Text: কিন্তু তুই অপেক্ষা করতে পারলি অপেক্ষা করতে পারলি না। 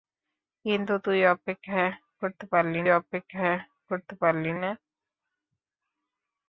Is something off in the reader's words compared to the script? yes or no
no